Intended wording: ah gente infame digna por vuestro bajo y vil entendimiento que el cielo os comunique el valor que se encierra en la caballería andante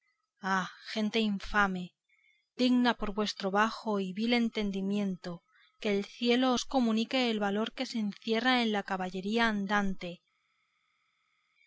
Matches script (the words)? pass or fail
pass